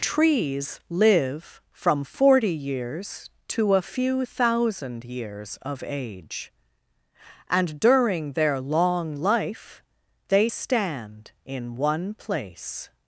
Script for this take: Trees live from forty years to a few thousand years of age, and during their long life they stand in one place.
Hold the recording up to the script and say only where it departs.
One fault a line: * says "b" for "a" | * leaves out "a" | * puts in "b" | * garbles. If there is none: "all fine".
all fine